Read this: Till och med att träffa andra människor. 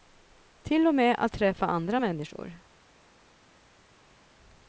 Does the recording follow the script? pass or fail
pass